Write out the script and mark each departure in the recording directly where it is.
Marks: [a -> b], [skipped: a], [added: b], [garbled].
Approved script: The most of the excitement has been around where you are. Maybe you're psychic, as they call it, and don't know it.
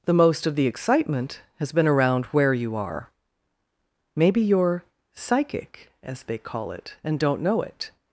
The most of the excitement has been around where you are. Maybe you're psychic, as they call it, and don't know it.